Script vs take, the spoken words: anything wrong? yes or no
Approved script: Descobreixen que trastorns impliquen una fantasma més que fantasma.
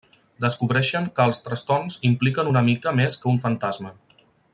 yes